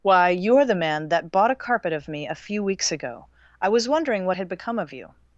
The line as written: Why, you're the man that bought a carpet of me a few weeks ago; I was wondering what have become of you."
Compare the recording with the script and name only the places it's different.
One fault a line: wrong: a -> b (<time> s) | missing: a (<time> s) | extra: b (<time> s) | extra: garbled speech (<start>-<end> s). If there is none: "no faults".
wrong: have -> had (4.3 s)